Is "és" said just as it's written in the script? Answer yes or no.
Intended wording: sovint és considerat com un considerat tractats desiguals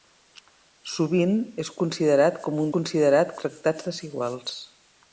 yes